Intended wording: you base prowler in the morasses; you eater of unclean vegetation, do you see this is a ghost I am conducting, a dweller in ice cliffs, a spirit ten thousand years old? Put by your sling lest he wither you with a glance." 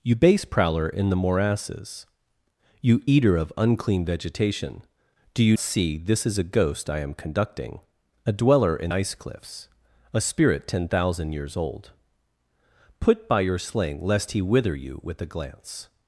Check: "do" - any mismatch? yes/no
no